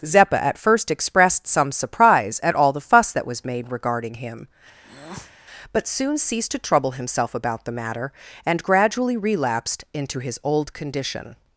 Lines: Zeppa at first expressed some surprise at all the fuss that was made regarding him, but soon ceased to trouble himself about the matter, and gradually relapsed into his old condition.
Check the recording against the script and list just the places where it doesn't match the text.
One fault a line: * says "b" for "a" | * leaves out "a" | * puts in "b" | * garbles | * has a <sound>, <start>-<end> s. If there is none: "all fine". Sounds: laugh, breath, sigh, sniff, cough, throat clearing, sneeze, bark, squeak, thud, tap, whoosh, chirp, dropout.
* has a breath, 4.8-5.3 s